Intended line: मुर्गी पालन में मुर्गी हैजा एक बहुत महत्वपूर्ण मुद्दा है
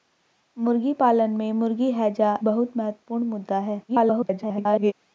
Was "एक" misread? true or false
true